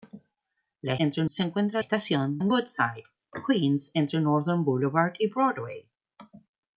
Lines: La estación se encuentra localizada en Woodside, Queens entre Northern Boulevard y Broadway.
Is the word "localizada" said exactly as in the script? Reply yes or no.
no